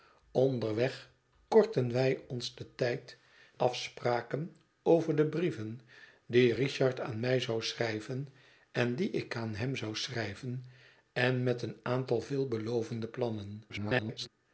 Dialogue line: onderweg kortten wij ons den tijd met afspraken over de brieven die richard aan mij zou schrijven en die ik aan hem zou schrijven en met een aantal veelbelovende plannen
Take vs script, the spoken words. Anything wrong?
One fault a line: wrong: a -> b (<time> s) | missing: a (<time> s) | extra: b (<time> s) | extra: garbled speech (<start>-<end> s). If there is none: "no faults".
missing: met (3.2 s)
extra: garbled speech (13.7-14.3 s)